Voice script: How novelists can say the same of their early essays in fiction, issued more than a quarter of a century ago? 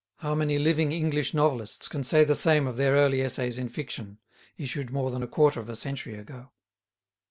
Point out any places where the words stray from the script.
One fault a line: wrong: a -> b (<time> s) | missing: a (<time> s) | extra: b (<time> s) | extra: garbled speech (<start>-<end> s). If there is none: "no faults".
extra: many living English (0.3 s)